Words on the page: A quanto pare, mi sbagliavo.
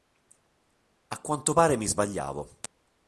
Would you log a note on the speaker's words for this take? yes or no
no